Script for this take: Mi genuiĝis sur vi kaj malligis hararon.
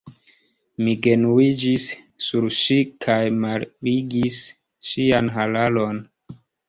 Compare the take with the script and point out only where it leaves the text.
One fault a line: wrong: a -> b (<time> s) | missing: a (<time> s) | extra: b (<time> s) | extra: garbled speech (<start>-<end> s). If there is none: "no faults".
wrong: vi -> ŝi (2.6 s)
extra: ŝian (4.9 s)